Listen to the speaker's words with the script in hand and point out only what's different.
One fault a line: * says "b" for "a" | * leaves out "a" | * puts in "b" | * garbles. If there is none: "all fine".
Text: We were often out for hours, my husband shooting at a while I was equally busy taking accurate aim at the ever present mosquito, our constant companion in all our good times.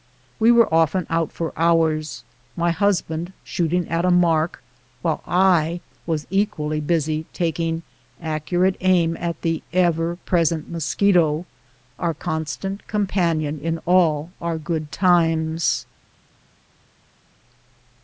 * puts in "mark"